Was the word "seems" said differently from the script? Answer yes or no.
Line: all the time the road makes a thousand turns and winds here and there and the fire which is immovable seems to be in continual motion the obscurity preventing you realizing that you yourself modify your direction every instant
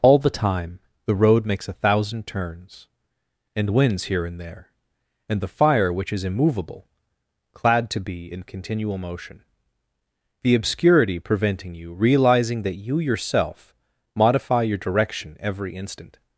yes